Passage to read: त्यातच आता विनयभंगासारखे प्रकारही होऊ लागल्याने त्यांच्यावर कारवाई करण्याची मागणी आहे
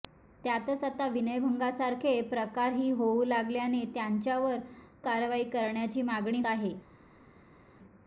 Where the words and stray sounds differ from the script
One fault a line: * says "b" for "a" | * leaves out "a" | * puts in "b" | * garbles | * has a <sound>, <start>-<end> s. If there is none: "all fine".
all fine